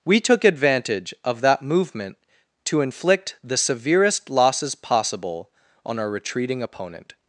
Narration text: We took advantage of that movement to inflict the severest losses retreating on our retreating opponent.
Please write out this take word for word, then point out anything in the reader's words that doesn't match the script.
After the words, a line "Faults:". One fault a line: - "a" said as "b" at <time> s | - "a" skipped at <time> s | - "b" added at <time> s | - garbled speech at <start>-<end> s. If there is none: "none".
We took advantage of that movement to inflict the severest losses possible on our retreating opponent.
Faults:
- "retreating" said as "possible" at 4.7 s